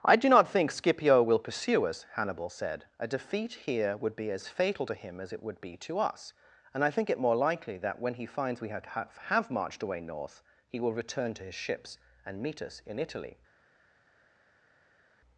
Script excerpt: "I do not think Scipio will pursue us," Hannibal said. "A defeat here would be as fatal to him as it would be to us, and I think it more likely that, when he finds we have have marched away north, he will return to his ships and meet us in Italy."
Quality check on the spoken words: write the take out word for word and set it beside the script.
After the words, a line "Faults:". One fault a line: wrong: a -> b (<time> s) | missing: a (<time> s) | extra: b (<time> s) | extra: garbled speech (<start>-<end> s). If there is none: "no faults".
"I do not think Scipio will pursue us," Hannibal said. "A defeat here would be as fatal to him as it would be to us, and I think it more likely that, when he finds we have have marched away north, he will return to his ships and meet us in Italy."
Faults:
no faults